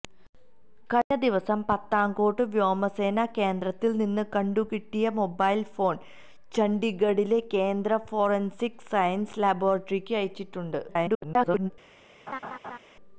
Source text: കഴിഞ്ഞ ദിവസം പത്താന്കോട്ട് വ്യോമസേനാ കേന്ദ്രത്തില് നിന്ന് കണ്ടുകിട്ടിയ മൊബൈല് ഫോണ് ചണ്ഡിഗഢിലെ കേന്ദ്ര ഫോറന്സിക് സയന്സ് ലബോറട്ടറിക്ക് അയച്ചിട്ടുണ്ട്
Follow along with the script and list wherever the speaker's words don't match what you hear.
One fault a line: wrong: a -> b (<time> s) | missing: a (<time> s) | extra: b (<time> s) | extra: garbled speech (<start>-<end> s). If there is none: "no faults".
extra: garbled speech (10.9-11.7 s)